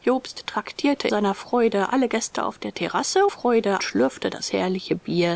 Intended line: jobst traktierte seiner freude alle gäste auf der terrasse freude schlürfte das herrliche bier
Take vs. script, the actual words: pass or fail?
pass